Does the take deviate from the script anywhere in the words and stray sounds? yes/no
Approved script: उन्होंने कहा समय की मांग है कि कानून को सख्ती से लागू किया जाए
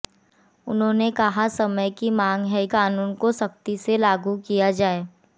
yes